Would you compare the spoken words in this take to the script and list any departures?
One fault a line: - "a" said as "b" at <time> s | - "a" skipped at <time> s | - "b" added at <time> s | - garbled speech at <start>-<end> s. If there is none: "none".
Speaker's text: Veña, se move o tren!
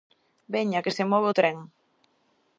- "que" added at 0.8 s